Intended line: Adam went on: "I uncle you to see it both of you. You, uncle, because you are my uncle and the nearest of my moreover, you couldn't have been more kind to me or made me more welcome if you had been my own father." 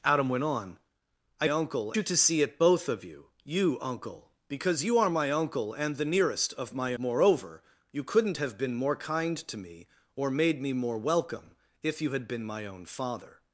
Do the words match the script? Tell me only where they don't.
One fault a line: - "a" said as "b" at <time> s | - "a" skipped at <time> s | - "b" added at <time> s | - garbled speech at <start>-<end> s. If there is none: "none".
none